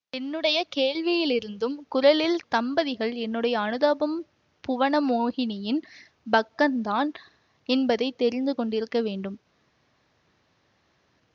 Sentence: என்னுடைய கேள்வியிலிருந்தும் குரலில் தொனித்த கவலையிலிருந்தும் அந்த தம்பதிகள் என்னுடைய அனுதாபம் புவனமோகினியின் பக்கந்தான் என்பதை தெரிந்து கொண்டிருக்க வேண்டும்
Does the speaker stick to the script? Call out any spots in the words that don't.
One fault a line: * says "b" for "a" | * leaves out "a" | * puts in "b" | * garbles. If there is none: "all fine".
* leaves out "தொனித்த கவலையிலிருந்தும் அந்த"